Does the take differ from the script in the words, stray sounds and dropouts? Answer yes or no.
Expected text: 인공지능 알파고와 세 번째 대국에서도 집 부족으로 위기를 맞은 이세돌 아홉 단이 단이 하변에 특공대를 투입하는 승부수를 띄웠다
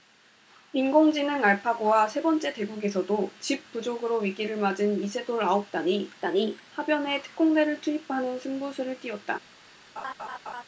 yes